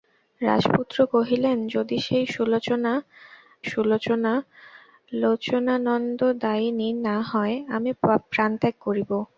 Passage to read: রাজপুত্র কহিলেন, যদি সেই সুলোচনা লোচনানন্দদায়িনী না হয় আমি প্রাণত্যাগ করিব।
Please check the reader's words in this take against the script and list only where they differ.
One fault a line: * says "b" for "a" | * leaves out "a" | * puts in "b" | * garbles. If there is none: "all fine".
* puts in "সুলোচনা"